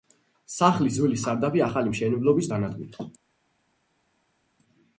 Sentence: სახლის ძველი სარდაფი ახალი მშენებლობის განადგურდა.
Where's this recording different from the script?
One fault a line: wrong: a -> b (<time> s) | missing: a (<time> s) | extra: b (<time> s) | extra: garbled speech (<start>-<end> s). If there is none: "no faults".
no faults